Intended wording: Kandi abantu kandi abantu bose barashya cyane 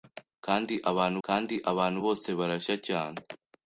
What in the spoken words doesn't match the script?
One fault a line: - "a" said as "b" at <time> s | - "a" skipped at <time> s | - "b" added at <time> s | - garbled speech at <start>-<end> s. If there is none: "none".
none